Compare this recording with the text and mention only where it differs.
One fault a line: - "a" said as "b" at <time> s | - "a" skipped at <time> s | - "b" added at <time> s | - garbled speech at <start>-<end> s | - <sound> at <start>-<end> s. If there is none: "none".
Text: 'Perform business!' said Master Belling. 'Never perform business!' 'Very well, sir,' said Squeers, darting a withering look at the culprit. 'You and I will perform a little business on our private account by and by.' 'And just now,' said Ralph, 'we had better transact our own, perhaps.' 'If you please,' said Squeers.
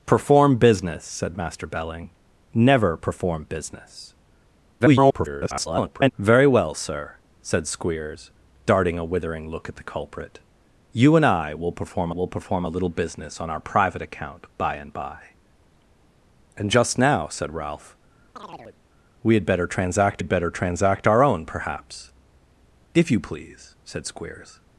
- garbled speech at 4.8-6.1 s
- "will perform" added at 12.1 s
- chirp at 18.4-18.8 s
- "had better transact" added at 20.2 s